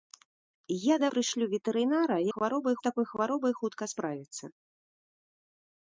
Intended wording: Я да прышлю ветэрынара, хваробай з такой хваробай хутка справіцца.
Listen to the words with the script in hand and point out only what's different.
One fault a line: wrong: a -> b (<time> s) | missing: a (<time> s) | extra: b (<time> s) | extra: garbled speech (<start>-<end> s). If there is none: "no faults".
no faults